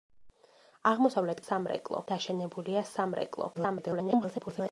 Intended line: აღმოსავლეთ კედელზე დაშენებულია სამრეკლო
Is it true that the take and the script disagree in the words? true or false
true